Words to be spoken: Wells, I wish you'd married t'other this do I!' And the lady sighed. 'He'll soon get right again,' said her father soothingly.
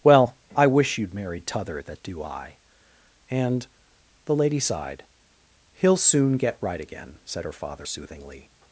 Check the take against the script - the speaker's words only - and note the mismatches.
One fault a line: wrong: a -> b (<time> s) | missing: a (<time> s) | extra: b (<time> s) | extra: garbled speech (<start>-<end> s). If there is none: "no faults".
wrong: Wells -> Well (0.0 s)
wrong: this -> that (1.8 s)